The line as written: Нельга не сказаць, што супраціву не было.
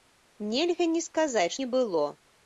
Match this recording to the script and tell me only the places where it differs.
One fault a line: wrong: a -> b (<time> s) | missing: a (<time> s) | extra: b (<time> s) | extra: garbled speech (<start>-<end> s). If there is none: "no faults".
missing: што супраціву (1.5 s)